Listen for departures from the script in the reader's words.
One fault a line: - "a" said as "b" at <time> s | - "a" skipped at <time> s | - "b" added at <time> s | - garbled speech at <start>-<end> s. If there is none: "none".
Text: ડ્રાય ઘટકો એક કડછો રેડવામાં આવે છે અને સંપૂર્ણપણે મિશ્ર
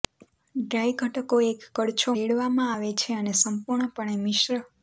none